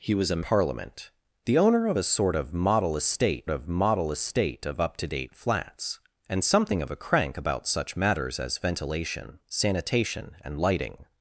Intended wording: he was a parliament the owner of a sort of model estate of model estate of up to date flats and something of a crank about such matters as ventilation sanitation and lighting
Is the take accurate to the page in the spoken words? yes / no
yes